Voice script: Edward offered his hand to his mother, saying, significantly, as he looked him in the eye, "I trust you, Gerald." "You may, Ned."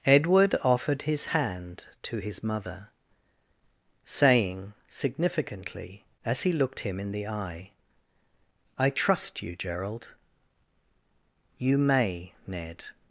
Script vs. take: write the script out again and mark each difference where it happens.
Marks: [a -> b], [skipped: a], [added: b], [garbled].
Edward offered his hand to his mother, saying, significantly, as he looked him in the eye, "I trust you, Gerald." "You may, Ned."